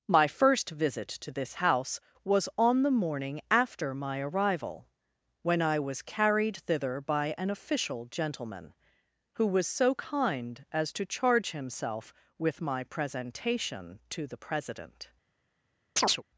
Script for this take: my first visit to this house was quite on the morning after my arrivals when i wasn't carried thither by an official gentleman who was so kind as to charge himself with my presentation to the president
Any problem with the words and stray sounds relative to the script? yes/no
yes